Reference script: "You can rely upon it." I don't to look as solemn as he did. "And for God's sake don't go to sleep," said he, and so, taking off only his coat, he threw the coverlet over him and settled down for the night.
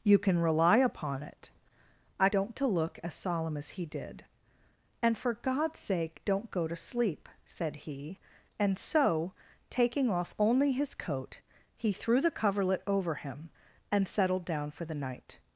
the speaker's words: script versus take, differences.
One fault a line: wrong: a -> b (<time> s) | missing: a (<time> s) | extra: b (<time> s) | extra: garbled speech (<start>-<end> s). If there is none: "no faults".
no faults